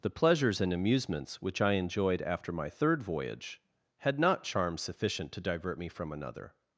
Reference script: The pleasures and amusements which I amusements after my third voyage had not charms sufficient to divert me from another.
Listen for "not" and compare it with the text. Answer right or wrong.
right